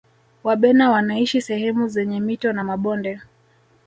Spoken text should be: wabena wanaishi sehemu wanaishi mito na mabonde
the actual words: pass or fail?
fail